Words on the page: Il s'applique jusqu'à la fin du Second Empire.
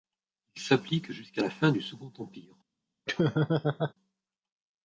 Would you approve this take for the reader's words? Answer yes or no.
yes